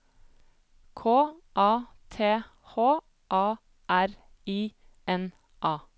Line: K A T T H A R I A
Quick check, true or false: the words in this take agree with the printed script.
false